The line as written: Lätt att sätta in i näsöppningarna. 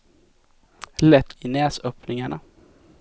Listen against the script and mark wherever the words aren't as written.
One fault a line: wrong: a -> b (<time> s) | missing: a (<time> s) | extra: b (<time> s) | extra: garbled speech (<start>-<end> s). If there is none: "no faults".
missing: att sätta in (1.4 s)